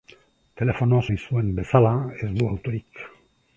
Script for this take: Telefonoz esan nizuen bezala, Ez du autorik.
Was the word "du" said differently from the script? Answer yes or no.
no